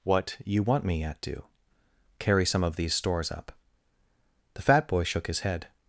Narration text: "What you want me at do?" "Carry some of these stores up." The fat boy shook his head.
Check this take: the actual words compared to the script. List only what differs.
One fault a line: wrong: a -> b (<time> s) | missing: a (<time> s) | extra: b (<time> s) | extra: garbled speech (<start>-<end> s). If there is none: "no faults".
no faults